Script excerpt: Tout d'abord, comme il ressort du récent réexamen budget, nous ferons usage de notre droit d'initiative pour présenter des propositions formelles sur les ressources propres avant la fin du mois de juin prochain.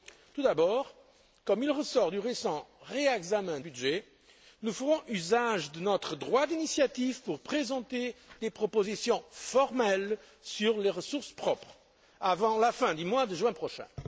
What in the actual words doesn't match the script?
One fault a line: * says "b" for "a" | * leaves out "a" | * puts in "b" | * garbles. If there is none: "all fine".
all fine